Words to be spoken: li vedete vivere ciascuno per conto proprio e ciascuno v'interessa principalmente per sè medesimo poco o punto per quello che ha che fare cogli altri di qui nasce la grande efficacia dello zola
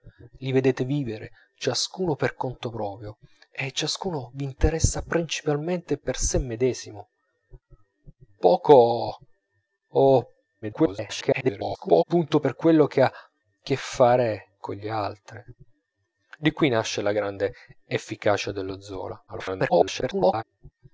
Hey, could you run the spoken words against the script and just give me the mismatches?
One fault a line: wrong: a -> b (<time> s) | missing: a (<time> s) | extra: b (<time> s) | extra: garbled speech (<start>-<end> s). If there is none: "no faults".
extra: garbled speech (10.6-12.0 s)
extra: garbled speech (19.3-20.4 s)